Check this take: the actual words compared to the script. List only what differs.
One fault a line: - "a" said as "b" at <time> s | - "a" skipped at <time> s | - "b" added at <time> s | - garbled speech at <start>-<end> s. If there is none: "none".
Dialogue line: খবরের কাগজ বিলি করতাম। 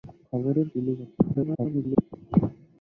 - "কাগজ" skipped at 0.7 s
- garbled speech at 1.3-2.2 s